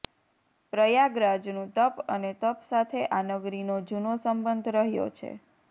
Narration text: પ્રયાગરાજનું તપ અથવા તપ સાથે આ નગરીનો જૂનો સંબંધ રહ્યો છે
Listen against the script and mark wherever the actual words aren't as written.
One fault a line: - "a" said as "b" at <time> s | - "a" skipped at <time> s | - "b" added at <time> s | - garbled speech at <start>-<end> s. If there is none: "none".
- "અથવા" said as "અને" at 2.1 s